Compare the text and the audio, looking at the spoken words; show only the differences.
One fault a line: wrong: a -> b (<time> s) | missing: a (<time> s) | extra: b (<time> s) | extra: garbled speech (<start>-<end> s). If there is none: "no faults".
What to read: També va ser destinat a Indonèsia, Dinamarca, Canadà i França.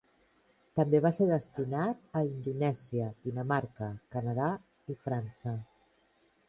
no faults